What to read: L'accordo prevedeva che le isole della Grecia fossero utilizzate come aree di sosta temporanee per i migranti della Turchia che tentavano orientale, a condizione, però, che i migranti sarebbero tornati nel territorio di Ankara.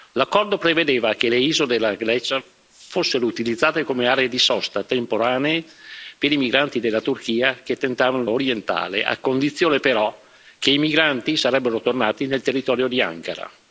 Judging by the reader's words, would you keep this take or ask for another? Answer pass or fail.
pass